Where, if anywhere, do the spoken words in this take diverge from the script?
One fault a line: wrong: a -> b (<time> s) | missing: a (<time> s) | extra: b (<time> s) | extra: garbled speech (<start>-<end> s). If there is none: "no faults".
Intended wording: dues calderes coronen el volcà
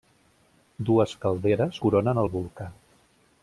no faults